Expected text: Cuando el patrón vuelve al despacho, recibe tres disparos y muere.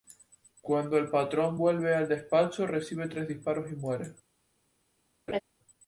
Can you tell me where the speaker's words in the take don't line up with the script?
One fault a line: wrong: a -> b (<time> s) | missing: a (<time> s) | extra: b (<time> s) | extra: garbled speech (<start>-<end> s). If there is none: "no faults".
no faults